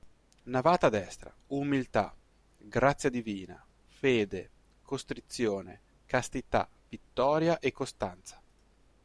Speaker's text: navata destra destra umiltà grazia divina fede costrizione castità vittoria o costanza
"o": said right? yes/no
no